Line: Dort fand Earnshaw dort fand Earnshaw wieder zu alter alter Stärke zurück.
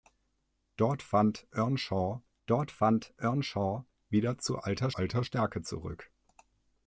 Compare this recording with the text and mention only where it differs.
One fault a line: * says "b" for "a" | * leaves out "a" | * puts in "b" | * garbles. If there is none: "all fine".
all fine